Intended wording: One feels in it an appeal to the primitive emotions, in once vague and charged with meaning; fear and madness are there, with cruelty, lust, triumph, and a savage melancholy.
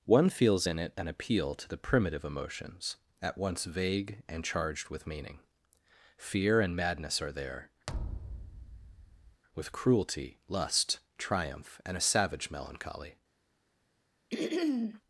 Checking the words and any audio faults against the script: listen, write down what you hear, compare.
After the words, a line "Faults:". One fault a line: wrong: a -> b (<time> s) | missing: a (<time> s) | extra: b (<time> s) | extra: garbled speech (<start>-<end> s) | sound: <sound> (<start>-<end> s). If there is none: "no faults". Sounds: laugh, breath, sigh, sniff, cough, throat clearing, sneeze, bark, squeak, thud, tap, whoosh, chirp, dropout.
One feels in it an appeal to the primitive emotions, at once vague and charged with meaning; fear and madness are there, with cruelty, lust, triumph, and a savage melancholy.
Faults:
wrong: in -> at (3.2 s)
sound: thud (7.9-9.4 s)
sound: throat clearing (14.3-15.0 s)